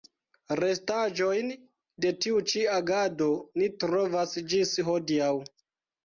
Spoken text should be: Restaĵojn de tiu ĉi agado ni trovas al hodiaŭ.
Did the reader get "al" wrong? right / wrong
wrong